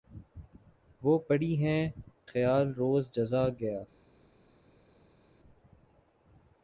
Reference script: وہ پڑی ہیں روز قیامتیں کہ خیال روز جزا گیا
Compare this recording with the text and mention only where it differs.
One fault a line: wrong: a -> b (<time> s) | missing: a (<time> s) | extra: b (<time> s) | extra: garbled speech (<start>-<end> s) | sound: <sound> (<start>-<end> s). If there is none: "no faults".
missing: روز قیامتیں کہ (1.8 s)